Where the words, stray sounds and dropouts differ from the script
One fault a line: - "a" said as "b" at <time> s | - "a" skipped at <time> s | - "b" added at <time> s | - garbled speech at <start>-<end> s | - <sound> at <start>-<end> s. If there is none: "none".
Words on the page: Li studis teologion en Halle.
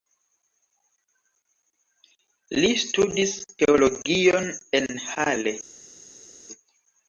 none